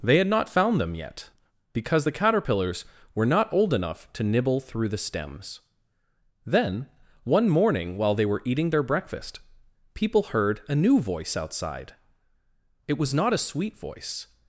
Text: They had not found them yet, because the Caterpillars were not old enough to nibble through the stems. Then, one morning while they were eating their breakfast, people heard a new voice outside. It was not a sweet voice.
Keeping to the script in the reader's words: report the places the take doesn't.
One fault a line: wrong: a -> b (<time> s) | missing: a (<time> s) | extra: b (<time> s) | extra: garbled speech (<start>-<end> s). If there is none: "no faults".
no faults